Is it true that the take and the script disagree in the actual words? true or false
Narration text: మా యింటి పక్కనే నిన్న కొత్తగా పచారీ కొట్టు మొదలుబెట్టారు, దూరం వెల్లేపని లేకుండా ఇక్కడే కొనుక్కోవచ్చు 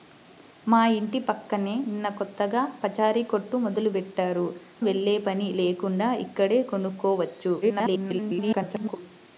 true